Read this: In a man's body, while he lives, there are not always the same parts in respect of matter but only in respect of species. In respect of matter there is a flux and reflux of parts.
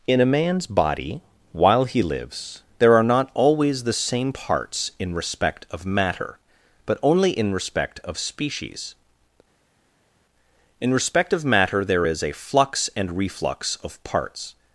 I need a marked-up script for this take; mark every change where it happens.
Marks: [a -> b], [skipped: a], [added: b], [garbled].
In a man's body, while he lives, there are not always the same parts in respect of matter but only in respect of species. In respect of matter there is a flux and reflux of parts.